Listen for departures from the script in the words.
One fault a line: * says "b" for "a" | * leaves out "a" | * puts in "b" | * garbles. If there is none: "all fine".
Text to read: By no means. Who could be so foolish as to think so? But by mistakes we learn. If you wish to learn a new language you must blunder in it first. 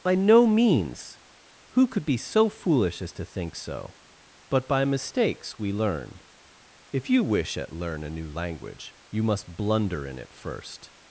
* says "at" for "to"